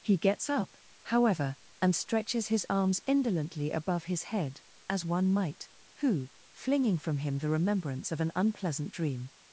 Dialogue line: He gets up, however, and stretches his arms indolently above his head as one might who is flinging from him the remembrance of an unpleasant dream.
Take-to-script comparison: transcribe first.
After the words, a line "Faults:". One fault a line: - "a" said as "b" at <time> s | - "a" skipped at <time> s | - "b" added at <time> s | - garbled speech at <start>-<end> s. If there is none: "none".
He gets up, however, and stretches his arms indolently above his head as one might who flinging from him the remembrance of an unpleasant dream.
Faults:
- "is" skipped at 6.3 s